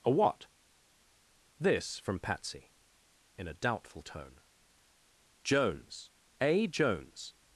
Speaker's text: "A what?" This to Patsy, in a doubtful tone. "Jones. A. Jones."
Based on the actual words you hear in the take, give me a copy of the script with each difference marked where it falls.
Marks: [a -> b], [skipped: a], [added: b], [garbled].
"A what?" This [to -> from] Patsy, in a doubtful tone. "Jones. A. Jones."